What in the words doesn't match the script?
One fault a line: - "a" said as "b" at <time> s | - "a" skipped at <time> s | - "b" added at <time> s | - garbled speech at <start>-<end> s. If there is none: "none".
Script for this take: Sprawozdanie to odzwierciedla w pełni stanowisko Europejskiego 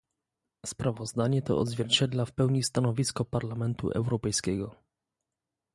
- "Parlamentu" added at 3.2 s